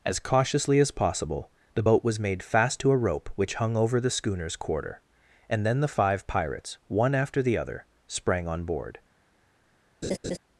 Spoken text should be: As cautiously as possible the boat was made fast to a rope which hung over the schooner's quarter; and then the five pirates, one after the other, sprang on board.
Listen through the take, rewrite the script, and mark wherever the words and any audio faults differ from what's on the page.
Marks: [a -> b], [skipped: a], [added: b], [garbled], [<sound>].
As cautiously as possible the boat was made fast to a rope which hung over the schooner's quarter; and then the five pirates, one after the other, sprang on board. [laugh]